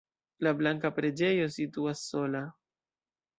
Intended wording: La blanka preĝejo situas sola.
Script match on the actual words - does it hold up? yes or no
yes